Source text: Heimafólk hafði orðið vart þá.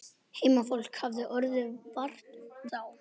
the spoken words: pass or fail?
pass